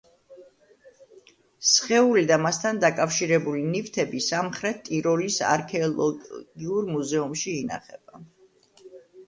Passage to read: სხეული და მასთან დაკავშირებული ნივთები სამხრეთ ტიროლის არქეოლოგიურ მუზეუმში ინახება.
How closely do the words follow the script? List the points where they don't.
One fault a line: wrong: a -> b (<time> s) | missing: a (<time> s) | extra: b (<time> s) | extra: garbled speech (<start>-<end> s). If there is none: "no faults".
no faults